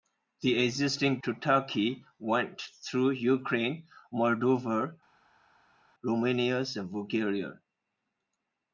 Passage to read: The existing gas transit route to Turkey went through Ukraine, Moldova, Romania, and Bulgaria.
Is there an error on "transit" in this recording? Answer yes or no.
yes